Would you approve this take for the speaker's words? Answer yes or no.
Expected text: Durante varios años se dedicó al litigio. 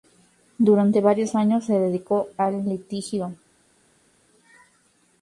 yes